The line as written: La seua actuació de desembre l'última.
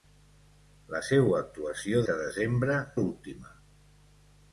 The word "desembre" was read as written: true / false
true